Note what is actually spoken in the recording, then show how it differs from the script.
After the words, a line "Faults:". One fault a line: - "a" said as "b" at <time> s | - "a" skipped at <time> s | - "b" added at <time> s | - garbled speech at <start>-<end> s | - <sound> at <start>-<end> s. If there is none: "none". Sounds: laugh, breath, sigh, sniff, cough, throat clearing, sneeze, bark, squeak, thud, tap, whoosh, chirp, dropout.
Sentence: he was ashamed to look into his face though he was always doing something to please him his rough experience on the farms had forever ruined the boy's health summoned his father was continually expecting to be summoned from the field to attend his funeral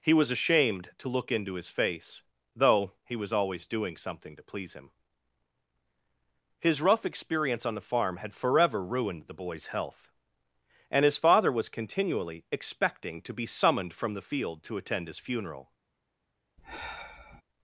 he was ashamed to look into his face though he was always doing something to please him his rough experience on the farm had forever ruined the boy's health and his father was continually expecting to be summoned from the field to attend his funeral
Faults:
- "farms" said as "farm" at 7.8 s
- "summoned" said as "and" at 10.9 s
- sigh at 16.6-17.4 s